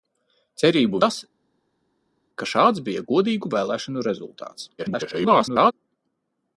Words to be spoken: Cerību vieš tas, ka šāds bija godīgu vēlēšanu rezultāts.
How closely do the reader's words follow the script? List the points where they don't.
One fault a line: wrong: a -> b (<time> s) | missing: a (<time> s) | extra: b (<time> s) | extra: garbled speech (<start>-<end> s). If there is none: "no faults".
missing: vieš (1.0 s)
extra: garbled speech (4.8-5.7 s)